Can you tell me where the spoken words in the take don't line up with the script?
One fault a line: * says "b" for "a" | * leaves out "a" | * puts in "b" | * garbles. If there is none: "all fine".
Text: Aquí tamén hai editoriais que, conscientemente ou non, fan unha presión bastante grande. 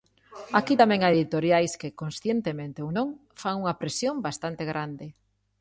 all fine